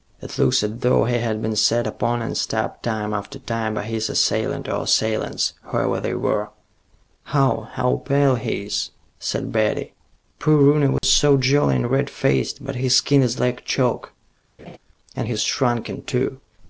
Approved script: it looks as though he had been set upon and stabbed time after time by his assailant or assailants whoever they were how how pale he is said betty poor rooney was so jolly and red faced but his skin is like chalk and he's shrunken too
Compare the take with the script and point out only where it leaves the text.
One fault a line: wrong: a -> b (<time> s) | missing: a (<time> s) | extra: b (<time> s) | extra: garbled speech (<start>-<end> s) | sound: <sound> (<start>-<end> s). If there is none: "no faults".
sound: dropout (11.0-11.0 s)
sound: laugh (14.6-14.8 s)